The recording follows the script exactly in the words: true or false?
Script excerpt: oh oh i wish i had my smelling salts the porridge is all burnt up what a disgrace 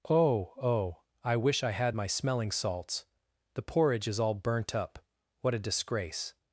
true